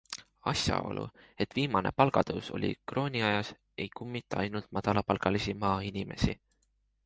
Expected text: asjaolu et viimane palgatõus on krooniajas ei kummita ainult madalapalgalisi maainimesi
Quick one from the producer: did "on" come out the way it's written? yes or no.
no